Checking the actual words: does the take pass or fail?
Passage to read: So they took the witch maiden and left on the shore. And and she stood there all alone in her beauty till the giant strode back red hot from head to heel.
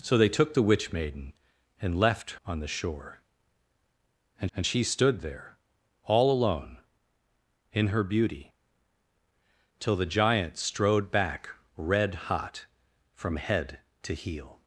pass